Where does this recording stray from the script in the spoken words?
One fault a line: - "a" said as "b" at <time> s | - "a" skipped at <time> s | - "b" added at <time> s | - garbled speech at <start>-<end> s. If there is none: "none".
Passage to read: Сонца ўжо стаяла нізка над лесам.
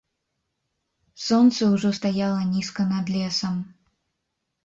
none